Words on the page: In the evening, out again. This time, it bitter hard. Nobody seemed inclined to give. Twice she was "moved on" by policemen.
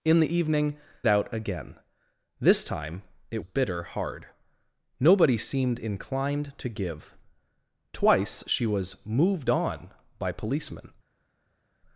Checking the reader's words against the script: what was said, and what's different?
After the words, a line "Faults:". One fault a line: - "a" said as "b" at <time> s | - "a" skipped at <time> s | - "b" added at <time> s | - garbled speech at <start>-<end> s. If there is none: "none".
In the evening, out again. This time, it bitter hard. Nobody seemed inclined to give. Twice she was "moved on" by policemen.
Faults:
none